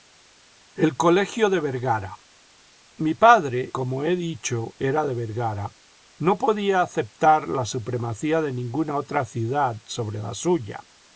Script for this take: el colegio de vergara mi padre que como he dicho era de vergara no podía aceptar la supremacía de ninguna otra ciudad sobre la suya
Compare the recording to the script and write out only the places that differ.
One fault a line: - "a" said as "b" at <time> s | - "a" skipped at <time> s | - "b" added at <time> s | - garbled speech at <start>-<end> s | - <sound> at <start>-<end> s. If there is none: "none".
- "que" skipped at 3.8 s